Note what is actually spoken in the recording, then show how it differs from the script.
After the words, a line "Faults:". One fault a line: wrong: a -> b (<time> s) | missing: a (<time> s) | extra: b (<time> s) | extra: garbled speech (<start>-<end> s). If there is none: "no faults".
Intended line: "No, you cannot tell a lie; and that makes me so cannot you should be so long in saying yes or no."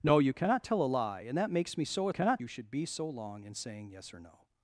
"No, you cannot tell a lie; and that makes me so cannot you should be so long in saying yes or no."
Faults:
no faults